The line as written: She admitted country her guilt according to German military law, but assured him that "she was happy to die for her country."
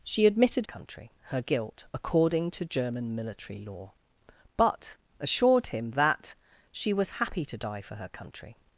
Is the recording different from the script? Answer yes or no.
no